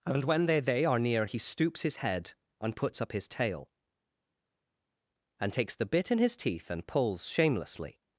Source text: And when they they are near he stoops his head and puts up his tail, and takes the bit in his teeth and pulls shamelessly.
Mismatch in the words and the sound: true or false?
false